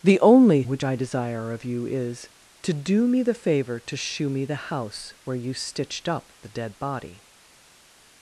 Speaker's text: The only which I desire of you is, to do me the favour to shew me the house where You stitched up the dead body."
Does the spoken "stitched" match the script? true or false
true